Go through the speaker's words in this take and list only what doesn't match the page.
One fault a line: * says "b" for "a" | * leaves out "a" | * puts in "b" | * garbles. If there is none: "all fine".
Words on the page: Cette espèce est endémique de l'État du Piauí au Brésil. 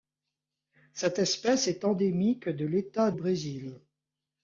* leaves out "du Piauí au"